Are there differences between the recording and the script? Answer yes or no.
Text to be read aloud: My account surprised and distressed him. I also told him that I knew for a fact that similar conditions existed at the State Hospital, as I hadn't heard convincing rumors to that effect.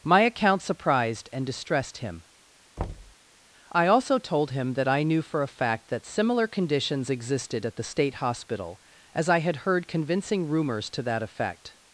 yes